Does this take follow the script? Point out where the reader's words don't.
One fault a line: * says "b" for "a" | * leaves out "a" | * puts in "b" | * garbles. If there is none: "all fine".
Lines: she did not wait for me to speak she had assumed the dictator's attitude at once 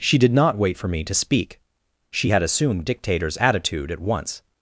* leaves out "the"